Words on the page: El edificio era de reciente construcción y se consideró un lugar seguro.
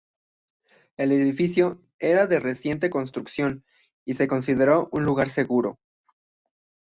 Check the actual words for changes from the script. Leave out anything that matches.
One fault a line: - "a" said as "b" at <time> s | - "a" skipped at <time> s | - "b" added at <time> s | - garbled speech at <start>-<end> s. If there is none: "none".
none